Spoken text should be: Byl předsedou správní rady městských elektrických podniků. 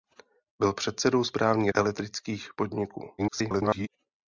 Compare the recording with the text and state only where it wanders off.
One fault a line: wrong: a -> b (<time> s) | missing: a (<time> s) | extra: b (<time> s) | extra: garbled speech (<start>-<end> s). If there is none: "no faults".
missing: rady městských (1.7 s)
extra: garbled speech (3.2-3.9 s)